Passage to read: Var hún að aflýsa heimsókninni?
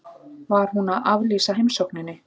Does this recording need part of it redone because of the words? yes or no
no